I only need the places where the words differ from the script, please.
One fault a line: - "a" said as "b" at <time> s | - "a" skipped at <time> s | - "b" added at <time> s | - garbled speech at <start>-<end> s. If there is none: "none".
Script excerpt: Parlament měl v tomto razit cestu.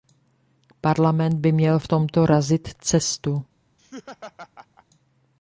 - "by" added at 1.4 s